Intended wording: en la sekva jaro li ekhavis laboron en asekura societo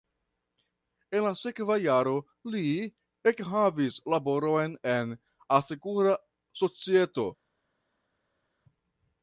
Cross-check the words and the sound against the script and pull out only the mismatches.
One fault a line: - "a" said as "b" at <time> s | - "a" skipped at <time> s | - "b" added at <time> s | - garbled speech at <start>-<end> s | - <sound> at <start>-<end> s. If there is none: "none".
none